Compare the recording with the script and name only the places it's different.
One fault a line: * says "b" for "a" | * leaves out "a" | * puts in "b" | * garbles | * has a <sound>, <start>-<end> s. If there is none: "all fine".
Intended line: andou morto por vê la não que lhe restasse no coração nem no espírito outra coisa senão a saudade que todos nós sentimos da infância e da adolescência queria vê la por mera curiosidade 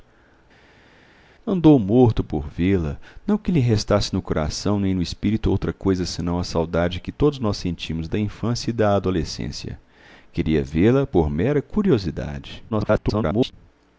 * garbles